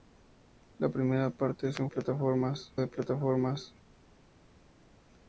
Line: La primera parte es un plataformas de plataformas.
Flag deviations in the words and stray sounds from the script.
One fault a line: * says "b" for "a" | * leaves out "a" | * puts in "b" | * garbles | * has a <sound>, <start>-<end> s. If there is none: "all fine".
all fine